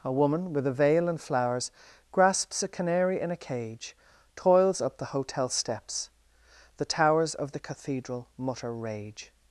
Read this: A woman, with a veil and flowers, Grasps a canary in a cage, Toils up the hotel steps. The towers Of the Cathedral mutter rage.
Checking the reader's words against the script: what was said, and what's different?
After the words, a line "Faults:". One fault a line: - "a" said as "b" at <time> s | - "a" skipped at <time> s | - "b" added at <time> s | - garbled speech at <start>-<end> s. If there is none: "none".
A woman, with a veil and flowers, Grasps a canary in a cage, Toils up the hotel steps. The towers Of the Cathedral mutter rage.
Faults:
none